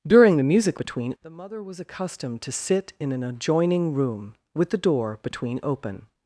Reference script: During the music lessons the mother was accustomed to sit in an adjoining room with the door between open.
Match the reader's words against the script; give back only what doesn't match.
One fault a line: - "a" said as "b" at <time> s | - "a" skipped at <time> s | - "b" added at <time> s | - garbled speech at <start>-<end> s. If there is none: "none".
- "lessons" said as "between" at 0.8 s